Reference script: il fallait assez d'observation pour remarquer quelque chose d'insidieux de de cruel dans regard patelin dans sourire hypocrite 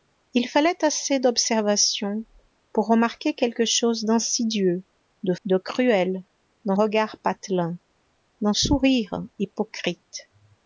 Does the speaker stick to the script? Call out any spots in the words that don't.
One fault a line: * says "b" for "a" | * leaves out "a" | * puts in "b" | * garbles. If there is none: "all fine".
all fine